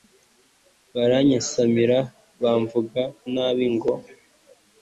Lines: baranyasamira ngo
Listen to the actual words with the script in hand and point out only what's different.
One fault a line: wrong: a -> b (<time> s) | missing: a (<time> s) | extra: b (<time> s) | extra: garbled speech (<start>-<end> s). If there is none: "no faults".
extra: bamvuga nabi (2.4 s)